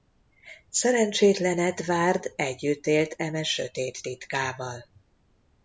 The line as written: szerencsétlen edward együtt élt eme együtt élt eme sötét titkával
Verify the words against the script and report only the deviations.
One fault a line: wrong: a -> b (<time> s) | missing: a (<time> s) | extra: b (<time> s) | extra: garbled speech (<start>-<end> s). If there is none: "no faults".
missing: együtt élt eme (3.4 s)